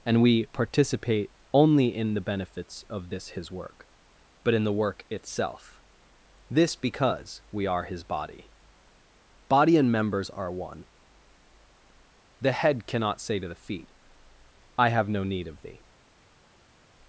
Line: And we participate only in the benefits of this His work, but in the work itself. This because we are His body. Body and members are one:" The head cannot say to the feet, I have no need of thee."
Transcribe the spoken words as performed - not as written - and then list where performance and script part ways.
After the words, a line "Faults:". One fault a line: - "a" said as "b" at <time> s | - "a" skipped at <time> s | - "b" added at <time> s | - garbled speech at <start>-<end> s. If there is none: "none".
And we participate only in the benefits of this His work, but in the work itself. This because we are His body. Body and members are one:" The head cannot say to the feet, I have no need of thee."
Faults:
none